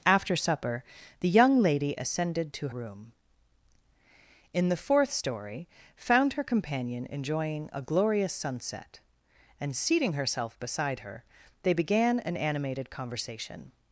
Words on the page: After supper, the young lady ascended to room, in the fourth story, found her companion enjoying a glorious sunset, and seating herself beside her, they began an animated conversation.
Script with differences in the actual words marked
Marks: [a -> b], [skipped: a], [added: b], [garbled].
After supper, the young lady ascended to room, in the fourth story, found her companion enjoying a glorious sunset, and seating herself beside her, they began an animated conversation.